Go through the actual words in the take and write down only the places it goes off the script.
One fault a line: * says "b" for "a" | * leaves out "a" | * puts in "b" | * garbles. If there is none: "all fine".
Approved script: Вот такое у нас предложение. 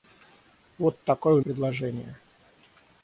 * leaves out "нас"